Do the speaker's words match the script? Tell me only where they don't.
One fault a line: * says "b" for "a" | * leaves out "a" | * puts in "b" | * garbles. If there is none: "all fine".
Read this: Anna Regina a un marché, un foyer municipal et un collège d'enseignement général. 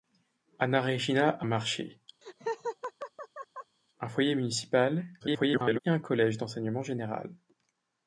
* leaves out "un"
* garbles